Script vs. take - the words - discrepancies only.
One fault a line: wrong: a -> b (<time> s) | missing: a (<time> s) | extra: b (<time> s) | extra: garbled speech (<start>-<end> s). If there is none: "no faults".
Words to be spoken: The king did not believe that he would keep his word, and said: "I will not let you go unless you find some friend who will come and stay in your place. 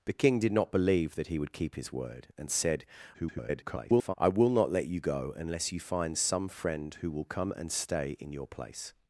extra: garbled speech (3.1-4.1 s)